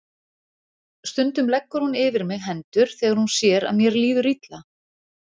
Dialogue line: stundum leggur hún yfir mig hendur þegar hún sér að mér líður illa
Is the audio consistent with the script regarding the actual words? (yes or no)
yes